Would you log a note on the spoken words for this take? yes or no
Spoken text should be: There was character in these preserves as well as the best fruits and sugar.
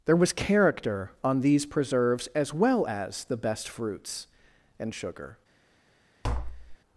yes